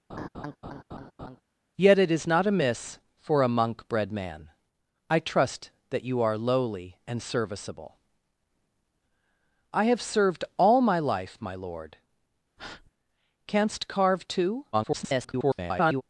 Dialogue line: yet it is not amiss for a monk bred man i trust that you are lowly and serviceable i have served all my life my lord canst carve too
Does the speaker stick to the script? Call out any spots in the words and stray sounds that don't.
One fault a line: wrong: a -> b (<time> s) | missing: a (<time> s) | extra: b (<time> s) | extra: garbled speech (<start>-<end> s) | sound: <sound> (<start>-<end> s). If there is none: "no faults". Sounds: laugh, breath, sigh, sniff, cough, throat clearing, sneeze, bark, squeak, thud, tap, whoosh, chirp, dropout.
sound: laugh (0.1-1.4 s)
sound: breath (12.6-12.9 s)
extra: garbled speech (14.7-16.0 s)